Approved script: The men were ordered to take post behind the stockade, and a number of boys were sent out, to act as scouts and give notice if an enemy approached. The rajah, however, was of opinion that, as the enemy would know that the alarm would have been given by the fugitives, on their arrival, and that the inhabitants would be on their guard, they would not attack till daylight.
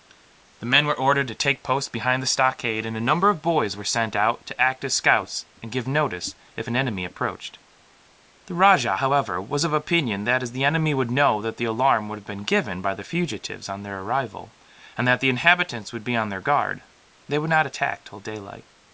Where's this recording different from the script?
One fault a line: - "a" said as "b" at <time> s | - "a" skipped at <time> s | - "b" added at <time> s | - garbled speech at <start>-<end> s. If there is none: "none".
none